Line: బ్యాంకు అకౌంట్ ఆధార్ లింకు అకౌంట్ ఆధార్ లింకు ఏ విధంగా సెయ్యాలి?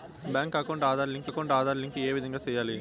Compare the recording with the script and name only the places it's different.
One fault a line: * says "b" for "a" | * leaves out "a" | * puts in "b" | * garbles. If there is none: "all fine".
all fine